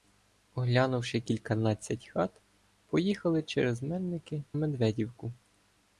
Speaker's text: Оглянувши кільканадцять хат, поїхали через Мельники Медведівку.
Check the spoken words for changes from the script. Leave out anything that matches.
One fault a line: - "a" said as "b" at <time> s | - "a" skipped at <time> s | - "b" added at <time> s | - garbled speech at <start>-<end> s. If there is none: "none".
none